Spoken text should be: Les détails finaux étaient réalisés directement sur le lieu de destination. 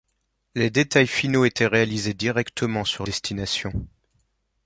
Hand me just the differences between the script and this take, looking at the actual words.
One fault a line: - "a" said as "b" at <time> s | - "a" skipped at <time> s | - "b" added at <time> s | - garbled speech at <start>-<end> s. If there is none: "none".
- "le lieu de" skipped at 3.0 s